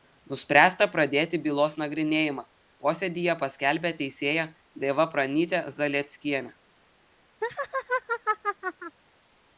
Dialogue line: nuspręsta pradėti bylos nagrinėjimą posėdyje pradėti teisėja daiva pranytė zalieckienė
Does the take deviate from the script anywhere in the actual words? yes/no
yes